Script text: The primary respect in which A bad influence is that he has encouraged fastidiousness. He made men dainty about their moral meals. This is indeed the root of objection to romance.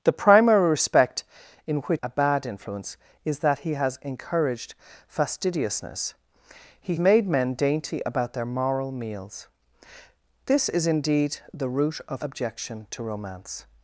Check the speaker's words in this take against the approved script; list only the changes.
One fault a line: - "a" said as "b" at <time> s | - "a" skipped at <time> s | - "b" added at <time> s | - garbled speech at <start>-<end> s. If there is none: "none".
none